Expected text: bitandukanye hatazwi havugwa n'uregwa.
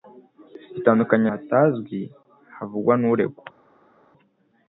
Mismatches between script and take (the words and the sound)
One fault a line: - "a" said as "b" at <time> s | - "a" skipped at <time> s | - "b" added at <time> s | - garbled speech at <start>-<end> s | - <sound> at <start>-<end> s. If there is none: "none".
none